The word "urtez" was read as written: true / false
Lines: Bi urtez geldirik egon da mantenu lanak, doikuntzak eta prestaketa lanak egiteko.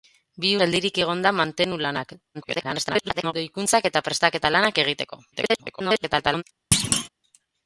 false